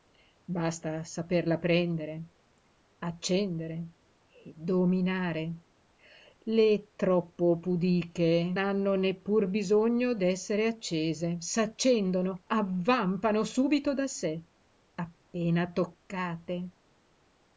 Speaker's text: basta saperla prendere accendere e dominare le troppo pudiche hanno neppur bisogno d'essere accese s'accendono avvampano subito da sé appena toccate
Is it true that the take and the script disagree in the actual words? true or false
false